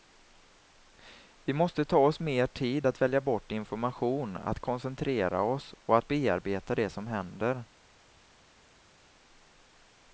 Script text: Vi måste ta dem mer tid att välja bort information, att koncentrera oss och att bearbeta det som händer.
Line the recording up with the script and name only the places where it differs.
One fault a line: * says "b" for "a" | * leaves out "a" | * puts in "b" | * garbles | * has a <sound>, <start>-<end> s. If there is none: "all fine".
* says "oss" for "dem"